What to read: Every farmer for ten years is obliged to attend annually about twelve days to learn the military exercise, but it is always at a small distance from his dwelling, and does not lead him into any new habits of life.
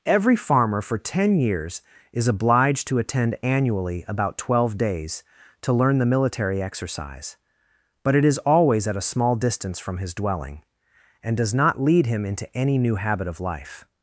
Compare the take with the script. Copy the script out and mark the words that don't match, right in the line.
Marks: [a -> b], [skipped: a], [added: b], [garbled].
Every farmer for ten years is obliged to attend annually about twelve days to learn the military exercise, but it is always at a small distance from his dwelling, and does not lead him into any new [habits -> habit] of life.